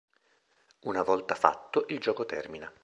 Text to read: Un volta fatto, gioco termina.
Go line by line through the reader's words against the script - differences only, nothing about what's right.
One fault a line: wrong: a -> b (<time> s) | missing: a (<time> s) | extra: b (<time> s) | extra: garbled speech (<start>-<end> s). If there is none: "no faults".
wrong: Un -> Una (0.8 s)
extra: il (1.9 s)